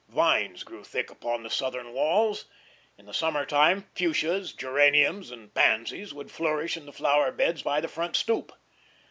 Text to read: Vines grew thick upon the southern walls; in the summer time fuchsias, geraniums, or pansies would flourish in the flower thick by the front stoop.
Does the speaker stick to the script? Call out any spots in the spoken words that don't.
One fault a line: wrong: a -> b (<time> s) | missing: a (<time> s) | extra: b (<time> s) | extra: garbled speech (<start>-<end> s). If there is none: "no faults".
wrong: or -> and (5.3 s)
wrong: thick -> beds (7.3 s)